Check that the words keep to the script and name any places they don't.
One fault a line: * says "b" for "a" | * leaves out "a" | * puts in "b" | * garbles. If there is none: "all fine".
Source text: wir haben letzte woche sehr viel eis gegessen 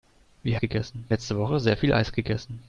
* says "gegessen" for "haben"